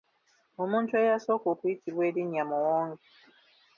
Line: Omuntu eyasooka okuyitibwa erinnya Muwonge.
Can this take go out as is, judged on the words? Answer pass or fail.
pass